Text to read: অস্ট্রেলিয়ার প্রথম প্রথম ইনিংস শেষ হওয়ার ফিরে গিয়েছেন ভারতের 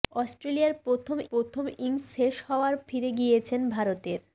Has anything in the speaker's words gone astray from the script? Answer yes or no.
no